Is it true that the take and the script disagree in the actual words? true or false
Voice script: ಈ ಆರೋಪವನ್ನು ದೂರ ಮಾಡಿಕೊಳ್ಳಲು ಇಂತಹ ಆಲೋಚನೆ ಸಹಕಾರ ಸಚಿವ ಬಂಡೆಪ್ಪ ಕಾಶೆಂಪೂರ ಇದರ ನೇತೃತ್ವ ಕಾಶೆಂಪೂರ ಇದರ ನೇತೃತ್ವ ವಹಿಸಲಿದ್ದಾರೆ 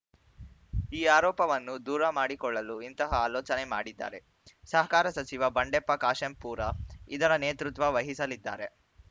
true